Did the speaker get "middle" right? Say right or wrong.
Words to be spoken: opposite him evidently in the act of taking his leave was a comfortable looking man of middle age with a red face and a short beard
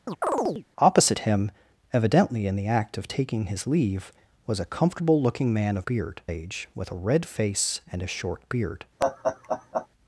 wrong